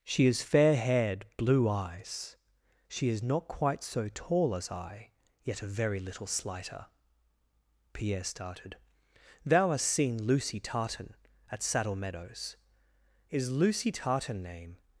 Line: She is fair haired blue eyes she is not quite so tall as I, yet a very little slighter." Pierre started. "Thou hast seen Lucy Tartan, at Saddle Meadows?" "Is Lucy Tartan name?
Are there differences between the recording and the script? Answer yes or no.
no